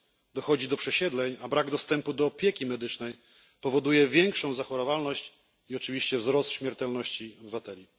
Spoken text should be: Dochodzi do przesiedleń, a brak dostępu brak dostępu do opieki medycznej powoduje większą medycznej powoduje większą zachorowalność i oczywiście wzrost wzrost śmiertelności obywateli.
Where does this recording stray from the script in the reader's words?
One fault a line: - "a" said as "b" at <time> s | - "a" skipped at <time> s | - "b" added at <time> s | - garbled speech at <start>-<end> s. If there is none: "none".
- "brak dostępu" skipped at 2.1 s
- "medycznej powoduje większą" skipped at 4.5 s
- "wzrost" skipped at 6.5 s